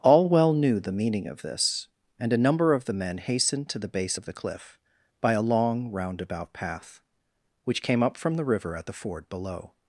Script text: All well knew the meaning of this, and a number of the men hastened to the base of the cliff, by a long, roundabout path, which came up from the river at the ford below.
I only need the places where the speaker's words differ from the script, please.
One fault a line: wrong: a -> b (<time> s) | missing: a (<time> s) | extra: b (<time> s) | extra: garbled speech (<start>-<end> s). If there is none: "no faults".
no faults